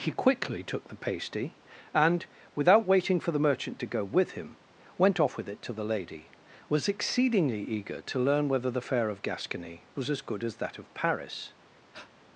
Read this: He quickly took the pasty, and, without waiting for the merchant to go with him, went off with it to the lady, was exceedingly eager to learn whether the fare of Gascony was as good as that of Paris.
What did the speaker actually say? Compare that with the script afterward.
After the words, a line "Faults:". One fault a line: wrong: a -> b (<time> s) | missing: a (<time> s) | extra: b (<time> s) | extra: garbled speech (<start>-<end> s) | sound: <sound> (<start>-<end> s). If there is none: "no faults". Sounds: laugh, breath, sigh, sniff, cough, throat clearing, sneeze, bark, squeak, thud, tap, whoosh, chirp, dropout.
He quickly took the pasty, and, without waiting for the merchant to go with him, went off with it to the lady, was exceedingly eager to learn whether the fare of Gascony was as good as that of Paris.
Faults:
sound: breath (11.9-12.1 s)